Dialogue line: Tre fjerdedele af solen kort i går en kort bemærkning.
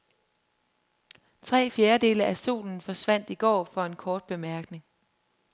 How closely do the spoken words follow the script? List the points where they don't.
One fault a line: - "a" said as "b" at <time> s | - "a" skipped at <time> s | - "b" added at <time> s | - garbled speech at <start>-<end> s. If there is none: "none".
- "kort" said as "forsvandt" at 2.8 s
- "for" added at 3.6 s